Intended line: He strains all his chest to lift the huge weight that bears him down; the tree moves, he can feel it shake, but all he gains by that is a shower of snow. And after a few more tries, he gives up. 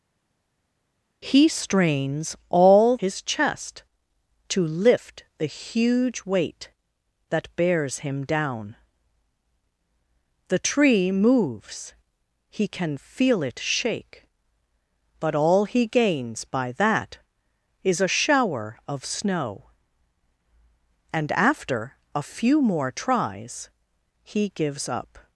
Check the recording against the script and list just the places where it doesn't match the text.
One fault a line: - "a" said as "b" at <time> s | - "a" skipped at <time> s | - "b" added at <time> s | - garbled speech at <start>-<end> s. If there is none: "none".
none